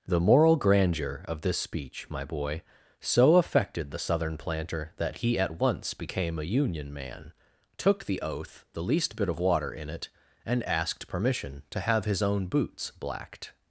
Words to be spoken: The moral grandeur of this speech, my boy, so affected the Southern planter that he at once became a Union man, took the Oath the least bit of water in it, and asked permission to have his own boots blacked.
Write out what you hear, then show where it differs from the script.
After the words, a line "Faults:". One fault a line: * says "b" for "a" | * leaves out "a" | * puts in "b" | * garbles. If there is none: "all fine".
The moral grandeur of this speech, my boy, so affected the Southern planter that he at once became a Union man, took the Oath the least bit of water in it, and asked permission to have his own boots blacked.
Faults:
all fine